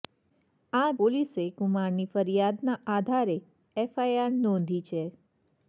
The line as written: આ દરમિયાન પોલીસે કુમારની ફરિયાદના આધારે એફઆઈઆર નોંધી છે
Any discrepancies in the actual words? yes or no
yes